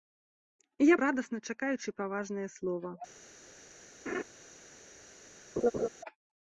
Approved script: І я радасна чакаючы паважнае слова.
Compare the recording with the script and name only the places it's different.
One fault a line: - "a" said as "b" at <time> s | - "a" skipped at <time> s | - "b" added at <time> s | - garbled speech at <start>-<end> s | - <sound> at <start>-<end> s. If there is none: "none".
- laugh at 4.1-4.2 s
- laugh at 5.6-5.9 s